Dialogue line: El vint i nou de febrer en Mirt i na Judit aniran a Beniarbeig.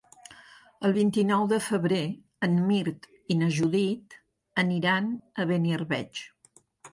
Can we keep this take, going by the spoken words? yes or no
yes